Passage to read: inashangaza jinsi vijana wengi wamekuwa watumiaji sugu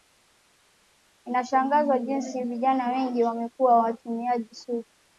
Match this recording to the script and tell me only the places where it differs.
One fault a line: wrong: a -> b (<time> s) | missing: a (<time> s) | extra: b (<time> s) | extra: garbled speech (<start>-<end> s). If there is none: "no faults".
no faults